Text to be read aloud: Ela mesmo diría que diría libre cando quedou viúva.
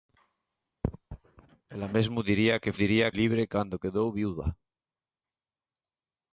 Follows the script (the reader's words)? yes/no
yes